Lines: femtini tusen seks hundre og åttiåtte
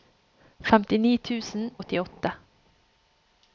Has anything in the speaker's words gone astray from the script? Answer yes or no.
yes